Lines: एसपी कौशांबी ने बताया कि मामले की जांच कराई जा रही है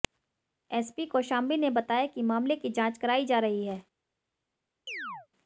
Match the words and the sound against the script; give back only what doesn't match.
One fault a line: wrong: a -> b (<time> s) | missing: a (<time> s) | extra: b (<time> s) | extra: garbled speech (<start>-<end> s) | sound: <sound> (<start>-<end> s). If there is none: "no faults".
sound: chirp (4.9-5.3 s)